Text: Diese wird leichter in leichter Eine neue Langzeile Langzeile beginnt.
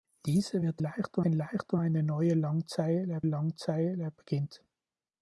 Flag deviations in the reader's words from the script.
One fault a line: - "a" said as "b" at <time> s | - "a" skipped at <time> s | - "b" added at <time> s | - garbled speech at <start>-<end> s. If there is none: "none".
none